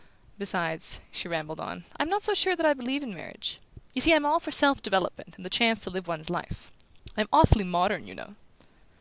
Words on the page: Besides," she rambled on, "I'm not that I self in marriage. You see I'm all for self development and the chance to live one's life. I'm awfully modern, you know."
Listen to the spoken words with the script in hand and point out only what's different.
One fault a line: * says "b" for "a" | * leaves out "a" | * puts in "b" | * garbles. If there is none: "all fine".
* puts in "so sure"
* says "believe" for "self"